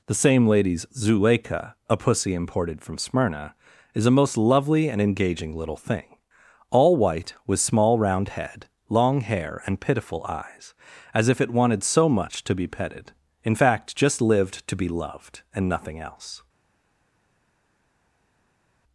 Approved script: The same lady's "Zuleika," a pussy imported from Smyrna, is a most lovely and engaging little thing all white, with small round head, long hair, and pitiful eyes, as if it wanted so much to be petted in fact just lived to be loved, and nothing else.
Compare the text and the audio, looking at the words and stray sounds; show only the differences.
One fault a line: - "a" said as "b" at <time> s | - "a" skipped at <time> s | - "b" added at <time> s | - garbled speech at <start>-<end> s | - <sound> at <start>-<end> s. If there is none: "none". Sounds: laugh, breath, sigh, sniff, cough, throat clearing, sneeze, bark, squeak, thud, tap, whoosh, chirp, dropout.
none